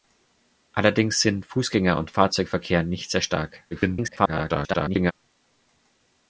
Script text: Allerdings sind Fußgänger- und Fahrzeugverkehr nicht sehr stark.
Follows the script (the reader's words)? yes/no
no